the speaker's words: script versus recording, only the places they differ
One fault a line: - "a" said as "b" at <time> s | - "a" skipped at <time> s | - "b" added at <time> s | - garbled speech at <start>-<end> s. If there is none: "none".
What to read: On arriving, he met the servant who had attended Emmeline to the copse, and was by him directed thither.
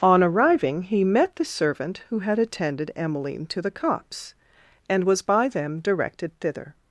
- "him" said as "them" at 5.5 s